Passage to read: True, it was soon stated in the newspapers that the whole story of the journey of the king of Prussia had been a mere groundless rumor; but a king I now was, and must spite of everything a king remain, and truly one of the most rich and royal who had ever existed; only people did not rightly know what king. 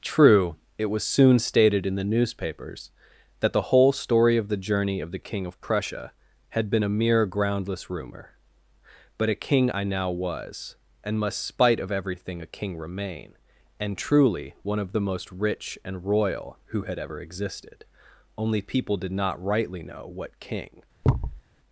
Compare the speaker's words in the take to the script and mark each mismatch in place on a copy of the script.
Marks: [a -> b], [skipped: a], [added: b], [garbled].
True, it was soon stated in the newspapers that the whole story of the journey of the king of Prussia had been a mere groundless rumor; but a king I now was, and must spite of everything a king remain, and truly one of the most rich and royal who had ever existed; only people did not rightly know what king.